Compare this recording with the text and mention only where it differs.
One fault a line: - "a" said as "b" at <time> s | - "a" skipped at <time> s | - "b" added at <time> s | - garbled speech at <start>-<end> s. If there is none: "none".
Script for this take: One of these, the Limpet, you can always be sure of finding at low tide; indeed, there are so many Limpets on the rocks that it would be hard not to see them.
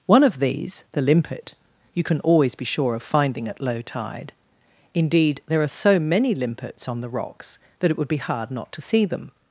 none